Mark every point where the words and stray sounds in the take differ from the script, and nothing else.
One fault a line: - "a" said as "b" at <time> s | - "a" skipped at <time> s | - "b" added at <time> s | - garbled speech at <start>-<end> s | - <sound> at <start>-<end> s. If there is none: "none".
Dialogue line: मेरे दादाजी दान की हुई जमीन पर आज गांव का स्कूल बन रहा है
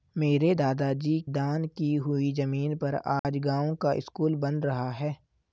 - dropout at 3.2-3.2 s